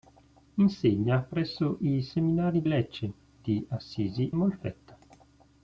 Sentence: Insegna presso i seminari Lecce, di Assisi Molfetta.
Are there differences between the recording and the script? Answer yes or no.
no